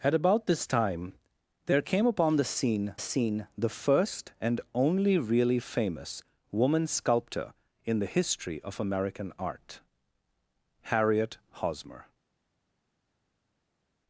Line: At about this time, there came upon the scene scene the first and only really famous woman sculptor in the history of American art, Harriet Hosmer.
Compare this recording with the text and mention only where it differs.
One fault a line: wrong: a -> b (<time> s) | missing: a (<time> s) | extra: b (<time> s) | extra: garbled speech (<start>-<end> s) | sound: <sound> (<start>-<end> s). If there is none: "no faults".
no faults